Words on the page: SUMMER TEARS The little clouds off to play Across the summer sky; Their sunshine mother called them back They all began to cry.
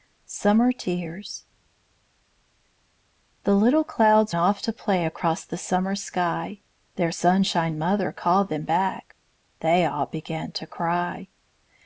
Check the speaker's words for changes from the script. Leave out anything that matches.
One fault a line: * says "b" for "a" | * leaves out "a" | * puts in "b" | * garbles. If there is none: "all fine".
all fine